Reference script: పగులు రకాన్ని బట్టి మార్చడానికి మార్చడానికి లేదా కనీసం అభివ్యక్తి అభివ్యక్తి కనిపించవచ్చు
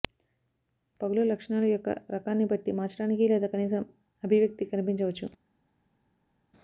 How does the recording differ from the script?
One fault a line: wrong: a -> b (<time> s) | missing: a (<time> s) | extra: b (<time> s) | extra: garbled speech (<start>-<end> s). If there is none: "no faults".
extra: లక్షణాలు యొక్క (1.2 s)
missing: మార్చడానికి (3.3 s)
missing: అభివ్యక్తి (4.7 s)